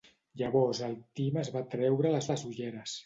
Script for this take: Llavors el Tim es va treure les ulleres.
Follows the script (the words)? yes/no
no